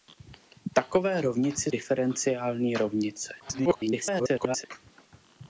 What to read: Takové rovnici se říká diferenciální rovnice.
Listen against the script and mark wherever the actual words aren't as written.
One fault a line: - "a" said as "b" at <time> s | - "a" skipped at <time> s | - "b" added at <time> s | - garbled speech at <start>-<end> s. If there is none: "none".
- "se říká" skipped at 1.7 s
- garbled speech at 3.4-4.7 s